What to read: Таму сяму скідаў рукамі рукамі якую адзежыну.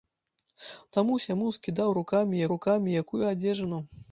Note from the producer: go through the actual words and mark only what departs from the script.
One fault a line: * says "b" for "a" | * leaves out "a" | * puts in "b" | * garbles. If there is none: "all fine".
all fine